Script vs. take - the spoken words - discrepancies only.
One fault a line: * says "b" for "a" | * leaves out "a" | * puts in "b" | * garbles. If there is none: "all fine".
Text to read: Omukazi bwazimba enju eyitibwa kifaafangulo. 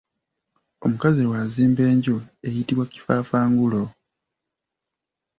all fine